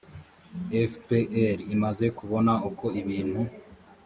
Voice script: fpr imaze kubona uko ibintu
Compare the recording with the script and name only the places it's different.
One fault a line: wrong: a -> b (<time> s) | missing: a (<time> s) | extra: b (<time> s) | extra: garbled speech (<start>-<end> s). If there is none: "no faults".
no faults